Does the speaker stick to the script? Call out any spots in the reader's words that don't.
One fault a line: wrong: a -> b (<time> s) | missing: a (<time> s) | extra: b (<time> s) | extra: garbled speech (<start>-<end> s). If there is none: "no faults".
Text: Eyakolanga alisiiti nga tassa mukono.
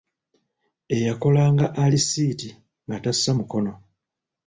no faults